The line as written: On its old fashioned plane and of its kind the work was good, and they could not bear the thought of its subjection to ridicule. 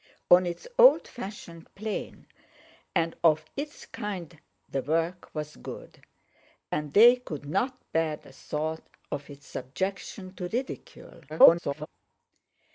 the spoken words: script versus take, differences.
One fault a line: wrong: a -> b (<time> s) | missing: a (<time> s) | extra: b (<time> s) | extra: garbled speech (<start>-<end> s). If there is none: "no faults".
extra: garbled speech (11.3-11.9 s)